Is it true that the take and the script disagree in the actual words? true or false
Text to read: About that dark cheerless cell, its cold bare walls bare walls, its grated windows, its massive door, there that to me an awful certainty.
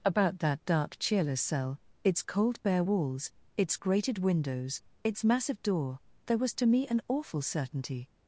true